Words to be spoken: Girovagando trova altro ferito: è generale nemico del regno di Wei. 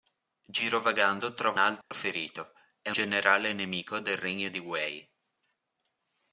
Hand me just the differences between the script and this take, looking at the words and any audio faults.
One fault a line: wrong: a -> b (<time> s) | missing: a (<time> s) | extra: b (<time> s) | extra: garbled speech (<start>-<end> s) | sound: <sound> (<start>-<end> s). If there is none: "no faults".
sound: dropout (1.8-1.9 s)